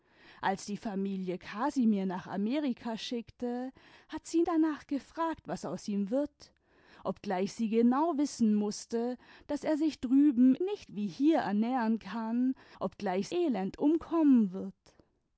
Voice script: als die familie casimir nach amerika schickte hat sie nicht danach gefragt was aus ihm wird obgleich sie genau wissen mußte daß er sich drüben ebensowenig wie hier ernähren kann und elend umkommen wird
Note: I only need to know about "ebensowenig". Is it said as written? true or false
false